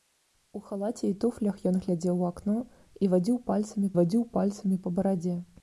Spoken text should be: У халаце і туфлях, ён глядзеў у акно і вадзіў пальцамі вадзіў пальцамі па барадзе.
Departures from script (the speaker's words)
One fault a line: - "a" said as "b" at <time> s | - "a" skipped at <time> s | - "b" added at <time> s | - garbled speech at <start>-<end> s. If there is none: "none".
none